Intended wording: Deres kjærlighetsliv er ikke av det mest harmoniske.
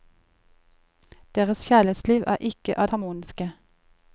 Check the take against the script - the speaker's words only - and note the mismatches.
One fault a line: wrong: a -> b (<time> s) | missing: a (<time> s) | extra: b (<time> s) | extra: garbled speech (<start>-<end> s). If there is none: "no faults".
missing: det mest (2.9 s)